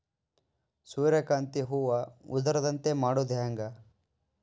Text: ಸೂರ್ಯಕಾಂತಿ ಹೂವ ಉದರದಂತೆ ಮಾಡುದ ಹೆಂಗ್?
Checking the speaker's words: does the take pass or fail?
pass